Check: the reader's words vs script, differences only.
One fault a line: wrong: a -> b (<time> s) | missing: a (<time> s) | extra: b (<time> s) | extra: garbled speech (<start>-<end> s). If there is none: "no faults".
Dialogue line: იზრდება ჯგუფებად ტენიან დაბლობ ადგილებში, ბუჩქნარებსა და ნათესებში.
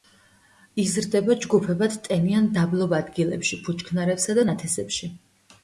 no faults